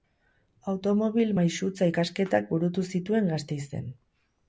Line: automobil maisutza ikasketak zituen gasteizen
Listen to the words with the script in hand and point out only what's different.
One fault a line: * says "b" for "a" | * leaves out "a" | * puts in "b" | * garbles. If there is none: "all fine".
* puts in "burutu"